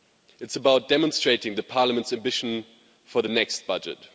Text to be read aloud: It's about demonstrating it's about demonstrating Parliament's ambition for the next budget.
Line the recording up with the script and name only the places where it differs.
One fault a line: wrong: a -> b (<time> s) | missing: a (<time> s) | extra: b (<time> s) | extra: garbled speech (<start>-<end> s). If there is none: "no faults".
missing: it's about demonstrating (1.6 s)